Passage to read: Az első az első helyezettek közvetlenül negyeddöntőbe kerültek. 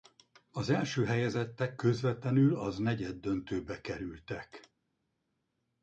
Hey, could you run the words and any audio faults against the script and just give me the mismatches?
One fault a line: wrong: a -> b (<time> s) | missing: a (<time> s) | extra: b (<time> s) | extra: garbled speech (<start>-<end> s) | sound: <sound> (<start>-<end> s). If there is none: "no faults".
missing: az első (1.1 s)
extra: az (2.6 s)